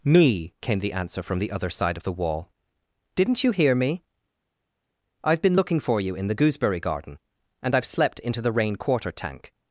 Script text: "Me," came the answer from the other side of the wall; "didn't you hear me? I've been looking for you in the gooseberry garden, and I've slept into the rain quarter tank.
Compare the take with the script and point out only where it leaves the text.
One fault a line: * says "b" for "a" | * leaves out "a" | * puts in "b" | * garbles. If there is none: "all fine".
all fine